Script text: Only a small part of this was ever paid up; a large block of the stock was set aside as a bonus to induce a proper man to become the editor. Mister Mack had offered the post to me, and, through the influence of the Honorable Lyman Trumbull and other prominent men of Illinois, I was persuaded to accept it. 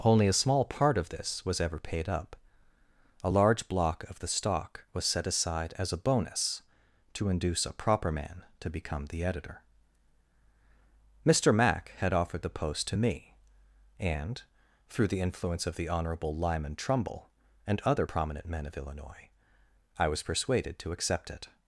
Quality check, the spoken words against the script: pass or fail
pass